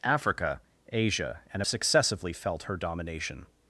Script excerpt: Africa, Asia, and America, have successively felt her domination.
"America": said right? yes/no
no